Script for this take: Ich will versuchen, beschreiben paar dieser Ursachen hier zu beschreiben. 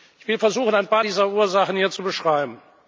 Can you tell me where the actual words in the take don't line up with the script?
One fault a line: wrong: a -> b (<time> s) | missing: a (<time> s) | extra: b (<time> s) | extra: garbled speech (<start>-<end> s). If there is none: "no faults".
wrong: beschreiben -> ein (0.8 s)